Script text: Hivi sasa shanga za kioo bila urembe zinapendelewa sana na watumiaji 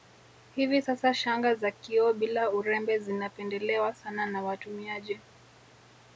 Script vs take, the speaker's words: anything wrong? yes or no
no